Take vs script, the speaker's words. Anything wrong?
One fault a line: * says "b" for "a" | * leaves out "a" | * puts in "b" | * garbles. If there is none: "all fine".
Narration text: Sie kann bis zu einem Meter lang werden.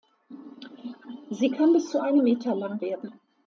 all fine